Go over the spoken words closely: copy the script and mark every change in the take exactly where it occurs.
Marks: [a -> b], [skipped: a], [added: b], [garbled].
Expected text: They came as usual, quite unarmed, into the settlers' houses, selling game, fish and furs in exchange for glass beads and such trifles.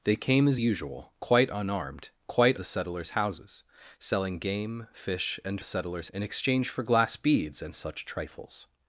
They came as usual, quite unarmed, [into -> quite] the settlers' houses, selling game, fish and [furs -> settlers] in exchange for glass beads and such trifles.